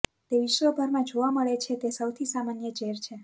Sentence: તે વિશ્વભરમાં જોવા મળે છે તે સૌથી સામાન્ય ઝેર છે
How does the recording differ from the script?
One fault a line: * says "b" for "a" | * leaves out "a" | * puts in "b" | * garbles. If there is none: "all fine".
all fine